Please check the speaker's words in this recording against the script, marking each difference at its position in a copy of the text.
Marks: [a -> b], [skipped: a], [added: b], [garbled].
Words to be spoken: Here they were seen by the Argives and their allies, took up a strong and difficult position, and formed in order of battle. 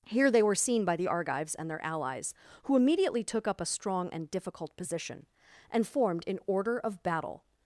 Here they were seen by the Argives and their allies, [added: who immediately] took up a strong and difficult position, and formed in order of battle.